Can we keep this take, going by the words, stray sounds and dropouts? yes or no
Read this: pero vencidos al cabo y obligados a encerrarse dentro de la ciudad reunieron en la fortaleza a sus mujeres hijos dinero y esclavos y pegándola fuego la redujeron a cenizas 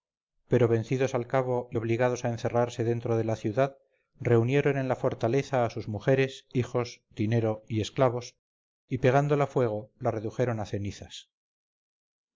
yes